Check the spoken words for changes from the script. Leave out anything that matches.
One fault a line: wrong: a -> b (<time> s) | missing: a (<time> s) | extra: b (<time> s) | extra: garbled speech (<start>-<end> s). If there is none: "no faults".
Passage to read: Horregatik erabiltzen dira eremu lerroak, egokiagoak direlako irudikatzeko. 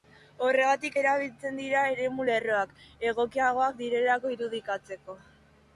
no faults